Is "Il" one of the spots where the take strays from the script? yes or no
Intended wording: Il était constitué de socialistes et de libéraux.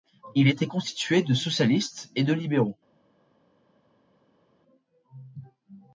no